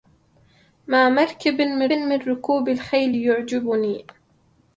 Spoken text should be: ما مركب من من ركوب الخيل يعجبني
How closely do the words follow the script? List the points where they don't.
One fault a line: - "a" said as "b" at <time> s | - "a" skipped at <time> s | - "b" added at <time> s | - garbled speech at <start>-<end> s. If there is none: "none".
none